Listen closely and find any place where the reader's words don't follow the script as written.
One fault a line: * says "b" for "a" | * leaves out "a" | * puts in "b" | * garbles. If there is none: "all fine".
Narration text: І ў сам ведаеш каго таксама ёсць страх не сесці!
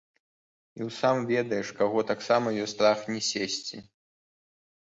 all fine